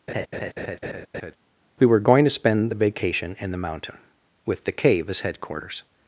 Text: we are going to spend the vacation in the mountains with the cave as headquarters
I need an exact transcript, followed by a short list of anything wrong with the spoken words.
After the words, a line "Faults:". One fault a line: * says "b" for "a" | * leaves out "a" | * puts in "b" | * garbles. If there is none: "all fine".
we were going to spend the vacation in the mountain with the cave as headquarters
Faults:
* says "were" for "are"
* says "mountain" for "mountains"